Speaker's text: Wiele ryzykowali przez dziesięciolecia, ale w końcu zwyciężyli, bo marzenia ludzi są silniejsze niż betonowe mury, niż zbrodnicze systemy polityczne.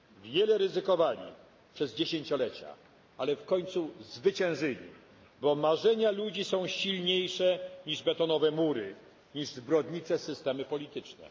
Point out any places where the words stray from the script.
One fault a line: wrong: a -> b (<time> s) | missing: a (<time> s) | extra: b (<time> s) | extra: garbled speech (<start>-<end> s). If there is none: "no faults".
no faults